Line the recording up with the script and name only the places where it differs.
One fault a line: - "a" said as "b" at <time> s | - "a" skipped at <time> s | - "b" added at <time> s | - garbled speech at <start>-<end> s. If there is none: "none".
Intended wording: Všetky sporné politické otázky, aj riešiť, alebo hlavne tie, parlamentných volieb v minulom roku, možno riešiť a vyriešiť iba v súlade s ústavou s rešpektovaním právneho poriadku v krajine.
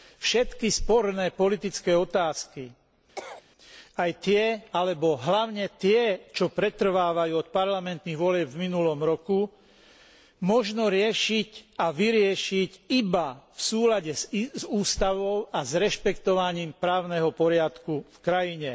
- "riešiť" said as "tie" at 4.2 s
- "čo pretrvávajú od" added at 6.3 s
- "a" added at 15.5 s